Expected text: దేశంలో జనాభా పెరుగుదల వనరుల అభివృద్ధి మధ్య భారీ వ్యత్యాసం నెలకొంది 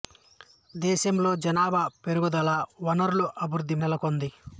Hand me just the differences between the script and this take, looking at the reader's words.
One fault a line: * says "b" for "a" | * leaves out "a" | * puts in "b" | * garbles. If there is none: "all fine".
* leaves out "మధ్య భారీ వ్యత్యాసం"